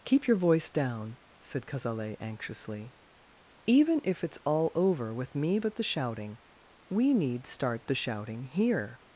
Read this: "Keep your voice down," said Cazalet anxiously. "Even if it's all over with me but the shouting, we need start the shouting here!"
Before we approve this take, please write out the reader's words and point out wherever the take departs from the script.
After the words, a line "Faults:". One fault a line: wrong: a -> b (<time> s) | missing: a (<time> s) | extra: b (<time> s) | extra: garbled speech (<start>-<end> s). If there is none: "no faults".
"Keep your voice down," said Cazalet anxiously. "Even if it's all over with me but the shouting, we need start the shouting here!"
Faults:
no faults